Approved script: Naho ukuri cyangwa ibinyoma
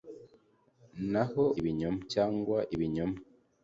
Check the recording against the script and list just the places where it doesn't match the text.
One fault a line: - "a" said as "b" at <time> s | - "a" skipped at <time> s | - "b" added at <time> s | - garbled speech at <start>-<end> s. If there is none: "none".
- "ukuri" said as "ibinyoma" at 1.6 s